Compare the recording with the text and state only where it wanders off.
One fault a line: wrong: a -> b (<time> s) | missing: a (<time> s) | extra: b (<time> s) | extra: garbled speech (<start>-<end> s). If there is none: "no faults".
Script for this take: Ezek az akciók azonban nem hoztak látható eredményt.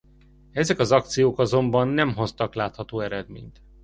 no faults